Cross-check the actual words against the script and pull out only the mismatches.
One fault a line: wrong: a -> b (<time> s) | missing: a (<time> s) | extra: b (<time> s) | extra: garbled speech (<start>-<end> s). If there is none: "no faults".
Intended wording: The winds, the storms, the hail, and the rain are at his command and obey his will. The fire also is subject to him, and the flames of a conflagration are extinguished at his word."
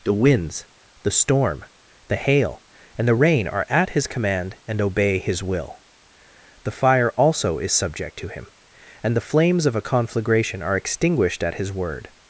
wrong: storms -> storm (1.1 s)